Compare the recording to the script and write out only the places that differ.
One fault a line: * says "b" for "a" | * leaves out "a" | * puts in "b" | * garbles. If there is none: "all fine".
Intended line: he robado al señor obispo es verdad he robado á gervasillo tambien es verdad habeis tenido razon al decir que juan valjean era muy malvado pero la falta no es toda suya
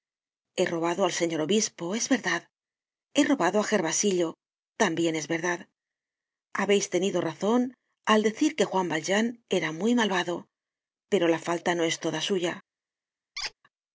all fine